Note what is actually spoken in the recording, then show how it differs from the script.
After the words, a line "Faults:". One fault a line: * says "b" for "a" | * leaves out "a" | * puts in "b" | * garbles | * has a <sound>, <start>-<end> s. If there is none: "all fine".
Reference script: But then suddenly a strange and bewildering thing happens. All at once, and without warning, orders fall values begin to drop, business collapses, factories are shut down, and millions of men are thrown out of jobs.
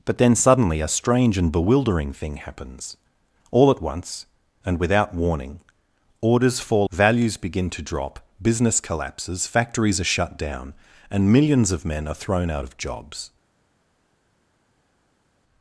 But then suddenly a strange and bewildering thing happens. All at once, and without warning, orders fall values begin to drop, business collapses, factories are shut down, and millions of men are thrown out of jobs.
Faults:
all fine